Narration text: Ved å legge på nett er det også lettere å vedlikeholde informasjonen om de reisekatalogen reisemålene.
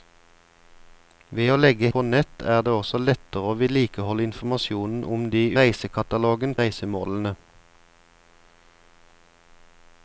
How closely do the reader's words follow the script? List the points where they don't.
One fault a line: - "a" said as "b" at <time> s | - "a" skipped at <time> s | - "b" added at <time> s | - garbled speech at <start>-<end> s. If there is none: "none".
none